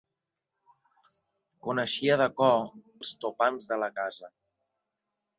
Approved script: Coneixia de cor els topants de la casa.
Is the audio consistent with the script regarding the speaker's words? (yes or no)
yes